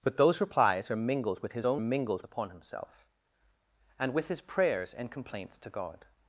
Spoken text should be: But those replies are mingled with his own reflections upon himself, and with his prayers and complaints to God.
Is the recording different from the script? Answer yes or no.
yes